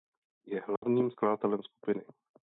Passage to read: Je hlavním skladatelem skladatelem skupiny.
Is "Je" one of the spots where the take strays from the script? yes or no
no